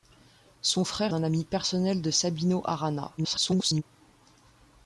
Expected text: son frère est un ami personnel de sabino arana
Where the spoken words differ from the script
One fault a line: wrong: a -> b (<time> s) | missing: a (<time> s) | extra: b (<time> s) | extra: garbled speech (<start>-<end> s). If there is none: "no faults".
missing: est (1.1 s)
extra: garbled speech (3.2-3.8 s)